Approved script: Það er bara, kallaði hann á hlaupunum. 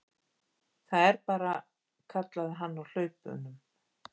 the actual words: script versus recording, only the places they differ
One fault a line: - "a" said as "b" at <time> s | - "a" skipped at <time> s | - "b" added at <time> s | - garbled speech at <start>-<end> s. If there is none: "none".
none